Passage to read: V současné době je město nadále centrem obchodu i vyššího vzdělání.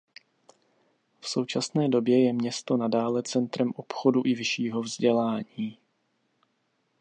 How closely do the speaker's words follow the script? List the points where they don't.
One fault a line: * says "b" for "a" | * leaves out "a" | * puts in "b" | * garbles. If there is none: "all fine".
all fine